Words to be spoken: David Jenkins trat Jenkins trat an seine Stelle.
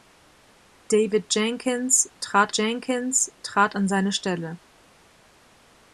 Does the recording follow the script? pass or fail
pass